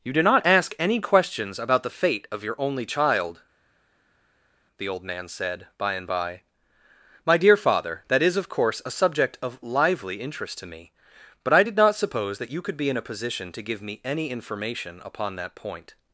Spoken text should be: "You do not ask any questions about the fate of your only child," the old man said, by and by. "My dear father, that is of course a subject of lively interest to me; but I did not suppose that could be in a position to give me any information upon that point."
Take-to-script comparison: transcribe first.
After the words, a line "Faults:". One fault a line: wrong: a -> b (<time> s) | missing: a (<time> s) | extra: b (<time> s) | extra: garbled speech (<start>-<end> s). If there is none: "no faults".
"You do not ask any questions about the fate of your only child," the old man said, by and by. "My dear father, that is of course a subject of lively interest to me; but I did not suppose that you could be in a position to give me any information upon that point."
Faults:
extra: you (12.5 s)